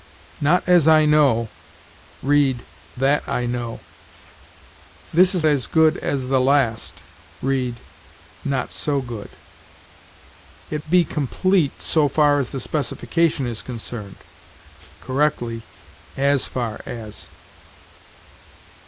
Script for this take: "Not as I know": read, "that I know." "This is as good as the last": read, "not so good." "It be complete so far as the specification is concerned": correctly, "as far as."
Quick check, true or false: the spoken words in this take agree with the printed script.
true